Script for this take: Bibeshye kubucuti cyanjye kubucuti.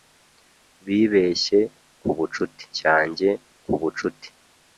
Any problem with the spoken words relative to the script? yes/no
no